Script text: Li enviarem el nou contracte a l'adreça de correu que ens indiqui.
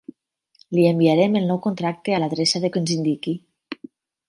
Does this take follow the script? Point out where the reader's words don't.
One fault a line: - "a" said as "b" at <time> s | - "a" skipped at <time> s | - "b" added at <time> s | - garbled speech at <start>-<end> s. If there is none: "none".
- "correu" skipped at 2.7 s